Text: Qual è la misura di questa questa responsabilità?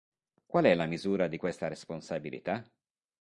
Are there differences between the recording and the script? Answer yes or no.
yes